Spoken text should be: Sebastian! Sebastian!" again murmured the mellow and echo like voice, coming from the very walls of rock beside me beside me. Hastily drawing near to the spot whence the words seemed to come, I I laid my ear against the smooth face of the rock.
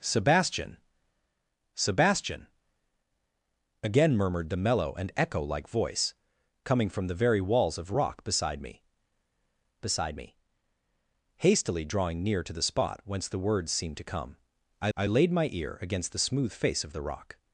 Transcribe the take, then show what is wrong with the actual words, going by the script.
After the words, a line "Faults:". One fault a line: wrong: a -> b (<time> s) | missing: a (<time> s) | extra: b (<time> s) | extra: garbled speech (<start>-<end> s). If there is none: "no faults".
Sebastian! Sebastian!" again murmured the mellow and echo like voice, coming from the very walls of rock beside me beside me. Hastily drawing near to the spot whence the words seemed to come, I I laid my ear against the smooth face of the rock.
Faults:
no faults